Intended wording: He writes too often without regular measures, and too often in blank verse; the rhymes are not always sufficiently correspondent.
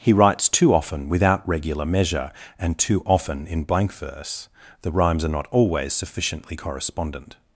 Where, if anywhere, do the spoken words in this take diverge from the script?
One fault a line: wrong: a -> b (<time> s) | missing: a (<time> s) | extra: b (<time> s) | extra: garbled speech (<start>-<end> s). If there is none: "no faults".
wrong: measures -> measure (1.9 s)